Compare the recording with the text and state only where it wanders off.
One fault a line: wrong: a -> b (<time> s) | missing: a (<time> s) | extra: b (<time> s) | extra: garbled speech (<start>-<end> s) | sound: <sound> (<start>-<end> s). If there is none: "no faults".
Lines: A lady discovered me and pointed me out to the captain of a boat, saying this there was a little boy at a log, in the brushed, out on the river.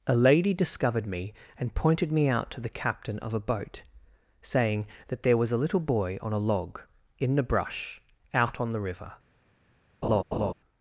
wrong: this -> that (5.1 s)
wrong: at -> on (6.2 s)
wrong: brushed -> brush (7.4 s)
sound: laugh (10.0-10.5 s)